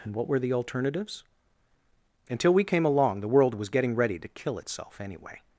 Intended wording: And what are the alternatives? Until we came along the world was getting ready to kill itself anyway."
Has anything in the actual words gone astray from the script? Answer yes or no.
yes